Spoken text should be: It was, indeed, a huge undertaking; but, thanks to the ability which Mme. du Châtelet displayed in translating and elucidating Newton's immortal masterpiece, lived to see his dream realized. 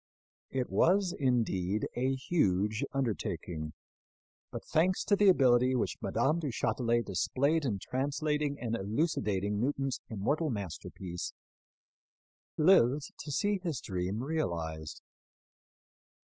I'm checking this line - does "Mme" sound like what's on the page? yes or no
yes